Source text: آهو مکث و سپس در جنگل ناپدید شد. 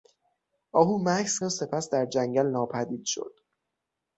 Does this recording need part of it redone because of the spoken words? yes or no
no